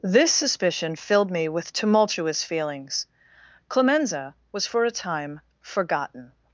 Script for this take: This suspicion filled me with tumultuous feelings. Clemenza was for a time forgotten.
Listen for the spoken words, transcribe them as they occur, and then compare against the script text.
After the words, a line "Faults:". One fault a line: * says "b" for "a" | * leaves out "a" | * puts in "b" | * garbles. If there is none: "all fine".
This suspicion filled me with tumultuous feelings. Clemenza was for a time forgotten.
Faults:
all fine